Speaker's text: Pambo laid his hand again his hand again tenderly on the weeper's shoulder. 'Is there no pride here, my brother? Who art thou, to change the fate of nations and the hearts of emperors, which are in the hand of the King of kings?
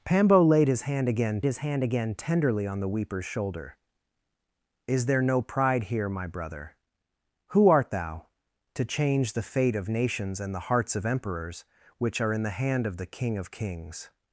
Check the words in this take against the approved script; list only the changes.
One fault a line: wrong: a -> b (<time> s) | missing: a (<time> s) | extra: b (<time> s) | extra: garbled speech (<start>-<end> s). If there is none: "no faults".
no faults